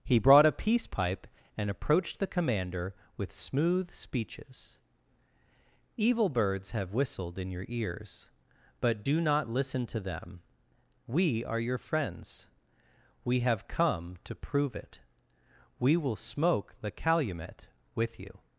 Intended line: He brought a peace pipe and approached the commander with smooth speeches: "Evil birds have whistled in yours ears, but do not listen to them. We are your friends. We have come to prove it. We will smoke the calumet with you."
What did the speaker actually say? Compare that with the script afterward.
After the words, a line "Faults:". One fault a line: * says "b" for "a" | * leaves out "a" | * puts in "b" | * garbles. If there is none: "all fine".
He brought a peace pipe and approached the commander with smooth speeches: "Evil birds have whistled in your ears, but do not listen to them. We are your friends. We have come to prove it. We will smoke the calumet with you."
Faults:
* says "your" for "yours"